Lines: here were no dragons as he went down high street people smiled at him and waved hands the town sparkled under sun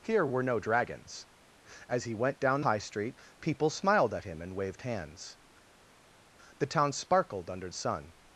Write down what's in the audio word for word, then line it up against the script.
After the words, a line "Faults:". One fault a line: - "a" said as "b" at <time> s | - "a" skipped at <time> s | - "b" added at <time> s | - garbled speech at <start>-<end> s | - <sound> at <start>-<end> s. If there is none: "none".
here were no dragons as he went down high street people smiled at him and waved hands the town sparkled under sun
Faults:
none